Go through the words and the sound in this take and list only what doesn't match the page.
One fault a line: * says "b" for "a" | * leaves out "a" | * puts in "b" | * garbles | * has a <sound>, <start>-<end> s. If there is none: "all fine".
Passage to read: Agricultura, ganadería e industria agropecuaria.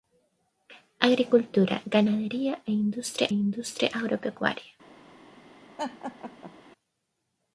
* puts in "industria"
* has a laugh, 5.8-6.5 s